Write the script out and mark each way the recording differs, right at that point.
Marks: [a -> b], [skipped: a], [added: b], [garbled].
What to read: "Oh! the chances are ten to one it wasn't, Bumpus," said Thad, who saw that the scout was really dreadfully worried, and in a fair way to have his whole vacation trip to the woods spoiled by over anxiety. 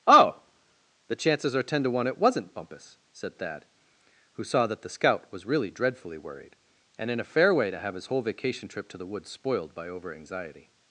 "Oh! the chances are ten to one it wasn't, Bumpus," said Thad, who saw that the scout was really dreadfully worried, and in a fair way to have his whole vacation trip to the woods spoiled by over anxiety.